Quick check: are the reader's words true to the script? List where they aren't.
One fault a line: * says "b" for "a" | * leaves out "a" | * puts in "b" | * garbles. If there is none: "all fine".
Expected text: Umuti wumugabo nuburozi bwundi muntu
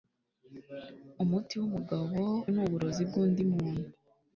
all fine